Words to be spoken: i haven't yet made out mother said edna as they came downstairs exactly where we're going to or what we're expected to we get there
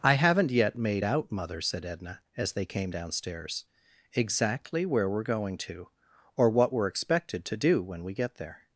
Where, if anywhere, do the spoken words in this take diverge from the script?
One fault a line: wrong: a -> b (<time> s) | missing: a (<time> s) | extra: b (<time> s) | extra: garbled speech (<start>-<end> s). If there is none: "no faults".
extra: do when (7.6 s)